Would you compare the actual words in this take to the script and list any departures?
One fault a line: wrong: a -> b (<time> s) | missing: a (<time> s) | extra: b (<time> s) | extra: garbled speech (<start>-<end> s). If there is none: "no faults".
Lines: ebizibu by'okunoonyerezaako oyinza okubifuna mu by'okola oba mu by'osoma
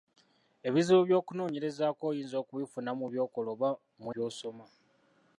no faults